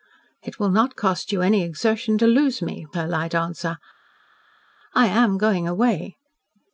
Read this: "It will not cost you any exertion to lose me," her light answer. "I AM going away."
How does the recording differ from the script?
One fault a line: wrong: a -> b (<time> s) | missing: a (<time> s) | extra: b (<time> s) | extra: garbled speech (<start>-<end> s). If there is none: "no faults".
no faults